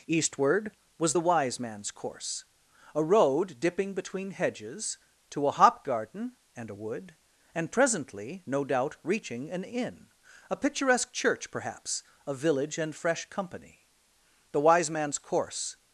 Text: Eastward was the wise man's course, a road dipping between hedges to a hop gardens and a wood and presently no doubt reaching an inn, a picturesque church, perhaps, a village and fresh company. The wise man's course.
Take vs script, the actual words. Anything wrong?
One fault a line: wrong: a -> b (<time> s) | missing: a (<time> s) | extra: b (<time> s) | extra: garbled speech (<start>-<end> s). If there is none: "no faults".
wrong: gardens -> garden (5.8 s)